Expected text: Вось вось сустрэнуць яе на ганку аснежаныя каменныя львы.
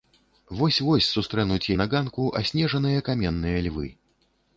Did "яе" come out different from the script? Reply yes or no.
yes